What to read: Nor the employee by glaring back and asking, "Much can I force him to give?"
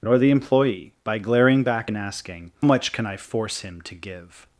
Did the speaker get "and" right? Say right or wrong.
right